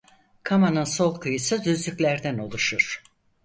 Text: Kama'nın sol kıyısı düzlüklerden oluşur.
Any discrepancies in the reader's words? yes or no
no